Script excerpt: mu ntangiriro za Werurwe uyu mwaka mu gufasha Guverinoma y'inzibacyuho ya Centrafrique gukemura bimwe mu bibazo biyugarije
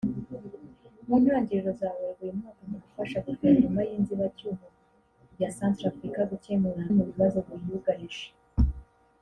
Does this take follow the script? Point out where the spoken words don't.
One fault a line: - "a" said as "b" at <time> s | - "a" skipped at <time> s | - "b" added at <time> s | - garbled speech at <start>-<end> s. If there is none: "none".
- "bimwe" skipped at 6.8 s